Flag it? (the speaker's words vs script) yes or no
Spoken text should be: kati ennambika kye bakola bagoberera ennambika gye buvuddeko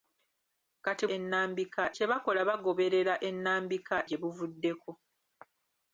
no